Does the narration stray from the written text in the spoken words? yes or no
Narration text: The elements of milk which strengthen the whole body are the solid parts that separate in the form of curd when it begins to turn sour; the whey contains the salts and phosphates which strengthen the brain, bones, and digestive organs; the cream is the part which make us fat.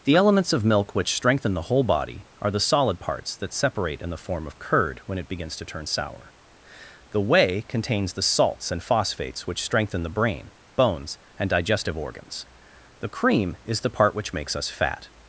yes